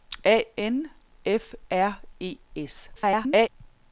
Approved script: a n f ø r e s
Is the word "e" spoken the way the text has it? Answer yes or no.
yes